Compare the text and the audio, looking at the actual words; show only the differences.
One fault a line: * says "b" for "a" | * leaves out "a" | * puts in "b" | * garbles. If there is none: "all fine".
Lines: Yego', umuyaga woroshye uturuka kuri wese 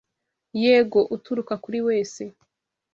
* leaves out "umuyaga woroshye"